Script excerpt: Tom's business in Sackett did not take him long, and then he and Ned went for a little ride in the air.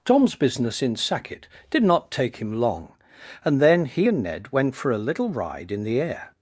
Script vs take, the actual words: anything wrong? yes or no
no